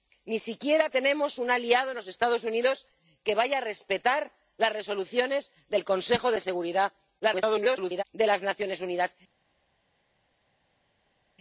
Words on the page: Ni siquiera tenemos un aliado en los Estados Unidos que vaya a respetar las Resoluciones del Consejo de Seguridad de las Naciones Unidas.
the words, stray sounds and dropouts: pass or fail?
fail